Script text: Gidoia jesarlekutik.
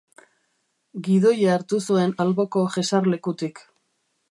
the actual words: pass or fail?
fail